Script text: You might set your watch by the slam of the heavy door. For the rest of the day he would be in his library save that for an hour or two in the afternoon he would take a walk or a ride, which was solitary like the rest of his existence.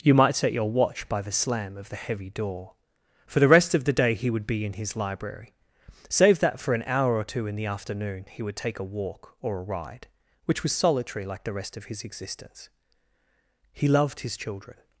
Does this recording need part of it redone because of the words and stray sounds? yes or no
yes